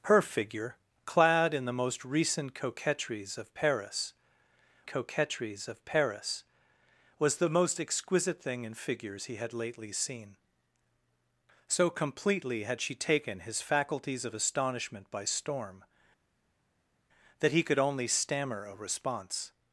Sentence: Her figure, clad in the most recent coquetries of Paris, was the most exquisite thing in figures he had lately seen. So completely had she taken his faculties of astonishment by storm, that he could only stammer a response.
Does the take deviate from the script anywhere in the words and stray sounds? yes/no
yes